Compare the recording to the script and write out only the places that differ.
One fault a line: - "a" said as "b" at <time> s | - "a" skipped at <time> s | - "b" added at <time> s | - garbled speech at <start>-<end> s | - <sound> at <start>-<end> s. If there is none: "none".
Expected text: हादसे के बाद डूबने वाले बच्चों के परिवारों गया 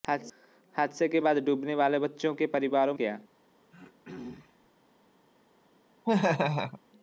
- throat clearing at 3.7-4.7 s
- laugh at 6.0-6.8 s